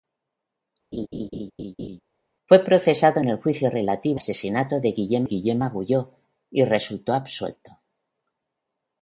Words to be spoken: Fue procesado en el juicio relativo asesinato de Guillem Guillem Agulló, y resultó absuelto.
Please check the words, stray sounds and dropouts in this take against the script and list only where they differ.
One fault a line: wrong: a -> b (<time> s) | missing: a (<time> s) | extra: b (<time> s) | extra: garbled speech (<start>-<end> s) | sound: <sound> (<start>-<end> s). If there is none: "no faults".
sound: laugh (0.9-2.0 s)